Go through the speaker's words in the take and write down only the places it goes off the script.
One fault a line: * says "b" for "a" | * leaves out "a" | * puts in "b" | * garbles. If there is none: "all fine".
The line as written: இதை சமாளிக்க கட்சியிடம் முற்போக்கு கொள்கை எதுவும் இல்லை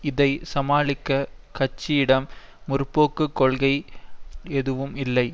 all fine